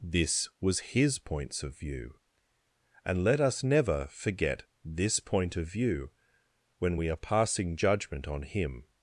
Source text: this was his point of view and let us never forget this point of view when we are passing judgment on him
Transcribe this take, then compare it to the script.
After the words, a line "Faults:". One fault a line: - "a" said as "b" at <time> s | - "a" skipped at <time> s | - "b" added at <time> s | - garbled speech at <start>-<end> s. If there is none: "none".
this was his points of view and let us never forget this point of view when we are passing judgment on him
Faults:
- "point" said as "points" at 1.2 s